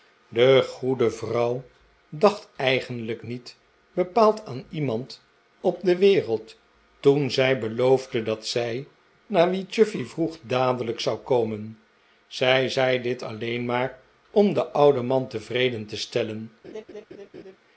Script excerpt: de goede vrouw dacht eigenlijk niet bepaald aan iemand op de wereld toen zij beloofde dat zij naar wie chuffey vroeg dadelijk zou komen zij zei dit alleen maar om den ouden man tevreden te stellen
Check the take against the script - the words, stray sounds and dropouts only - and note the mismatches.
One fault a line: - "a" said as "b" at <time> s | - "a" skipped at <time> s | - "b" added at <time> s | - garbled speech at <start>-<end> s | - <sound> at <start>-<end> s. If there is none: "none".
- laugh at 16.6-17.6 s